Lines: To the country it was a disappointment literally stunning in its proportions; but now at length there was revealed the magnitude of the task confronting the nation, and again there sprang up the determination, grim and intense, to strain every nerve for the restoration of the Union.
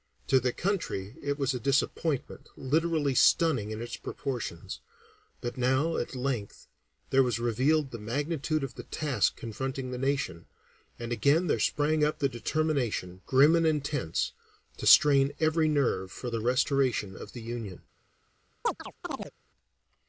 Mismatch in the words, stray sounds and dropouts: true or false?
true